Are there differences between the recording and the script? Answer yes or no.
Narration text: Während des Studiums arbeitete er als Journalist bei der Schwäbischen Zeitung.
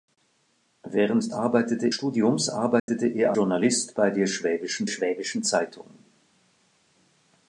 yes